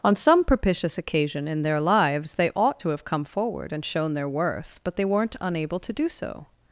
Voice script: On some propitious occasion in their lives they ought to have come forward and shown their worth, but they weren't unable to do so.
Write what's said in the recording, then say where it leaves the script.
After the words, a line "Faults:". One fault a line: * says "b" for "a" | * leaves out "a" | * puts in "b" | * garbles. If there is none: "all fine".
On some propitious occasion in their lives they ought to have come forward and shown their worth, but they weren't unable to do so.
Faults:
all fine